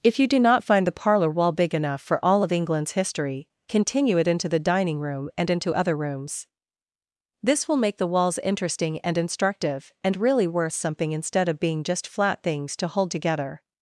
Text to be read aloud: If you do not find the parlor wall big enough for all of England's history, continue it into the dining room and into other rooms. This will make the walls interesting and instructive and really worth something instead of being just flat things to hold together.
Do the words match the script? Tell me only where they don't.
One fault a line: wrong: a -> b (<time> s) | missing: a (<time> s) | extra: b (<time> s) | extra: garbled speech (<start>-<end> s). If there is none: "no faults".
no faults